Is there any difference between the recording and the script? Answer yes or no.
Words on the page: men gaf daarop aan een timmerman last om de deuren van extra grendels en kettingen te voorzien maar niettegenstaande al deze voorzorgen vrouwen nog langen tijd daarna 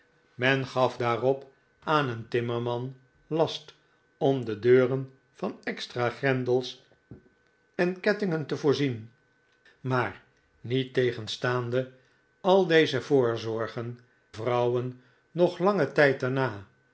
no